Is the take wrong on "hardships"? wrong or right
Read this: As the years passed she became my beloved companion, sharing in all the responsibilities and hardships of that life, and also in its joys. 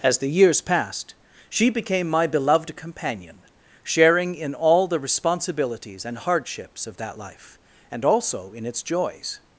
right